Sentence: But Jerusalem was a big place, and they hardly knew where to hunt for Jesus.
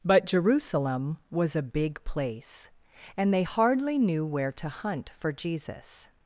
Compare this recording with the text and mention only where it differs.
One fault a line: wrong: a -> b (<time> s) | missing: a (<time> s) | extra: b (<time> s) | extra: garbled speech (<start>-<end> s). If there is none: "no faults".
no faults